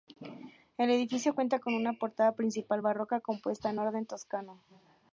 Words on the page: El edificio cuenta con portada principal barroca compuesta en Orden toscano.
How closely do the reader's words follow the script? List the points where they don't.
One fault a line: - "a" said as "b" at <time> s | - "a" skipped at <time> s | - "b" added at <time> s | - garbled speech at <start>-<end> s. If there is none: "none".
- "una" added at 1.7 s